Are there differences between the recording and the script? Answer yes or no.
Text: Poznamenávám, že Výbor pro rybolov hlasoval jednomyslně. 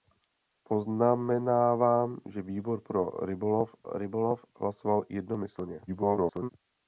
yes